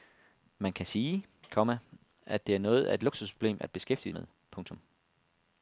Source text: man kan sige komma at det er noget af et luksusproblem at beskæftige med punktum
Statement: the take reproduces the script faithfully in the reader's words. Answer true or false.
true